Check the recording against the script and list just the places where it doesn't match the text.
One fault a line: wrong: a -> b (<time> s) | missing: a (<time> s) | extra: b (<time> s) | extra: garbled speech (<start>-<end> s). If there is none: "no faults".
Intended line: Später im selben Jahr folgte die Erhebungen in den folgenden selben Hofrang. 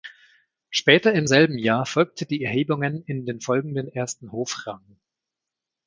wrong: selben -> ersten (3.9 s)